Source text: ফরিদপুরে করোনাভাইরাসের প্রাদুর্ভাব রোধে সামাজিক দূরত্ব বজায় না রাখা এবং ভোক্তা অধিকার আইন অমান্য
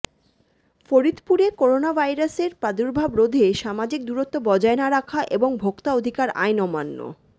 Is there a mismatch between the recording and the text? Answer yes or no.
no